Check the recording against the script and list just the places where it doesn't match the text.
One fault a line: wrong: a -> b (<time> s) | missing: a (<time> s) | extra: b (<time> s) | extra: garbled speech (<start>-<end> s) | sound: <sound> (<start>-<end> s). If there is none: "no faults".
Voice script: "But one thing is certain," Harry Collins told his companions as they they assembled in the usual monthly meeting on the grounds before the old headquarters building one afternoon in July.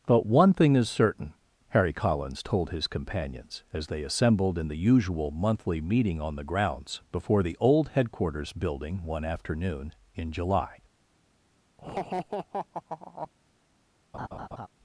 missing: they (4.0 s)
sound: laugh (11.8-13.3 s)
sound: laugh (14.1-14.7 s)